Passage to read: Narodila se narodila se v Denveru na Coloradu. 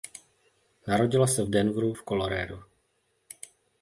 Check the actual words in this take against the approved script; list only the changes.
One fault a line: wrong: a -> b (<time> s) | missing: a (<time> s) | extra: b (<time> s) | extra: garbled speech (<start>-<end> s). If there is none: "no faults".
missing: narodila se (1.4 s)
wrong: na -> v (1.9 s)